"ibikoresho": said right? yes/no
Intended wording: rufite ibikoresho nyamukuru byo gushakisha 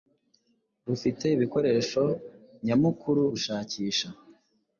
yes